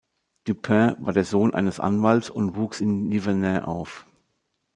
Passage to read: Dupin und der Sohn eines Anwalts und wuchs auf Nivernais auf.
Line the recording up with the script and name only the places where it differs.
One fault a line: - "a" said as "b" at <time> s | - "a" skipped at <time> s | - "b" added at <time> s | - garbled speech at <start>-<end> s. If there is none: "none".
- "und" said as "war" at 1.0 s
- "auf" said as "in" at 2.8 s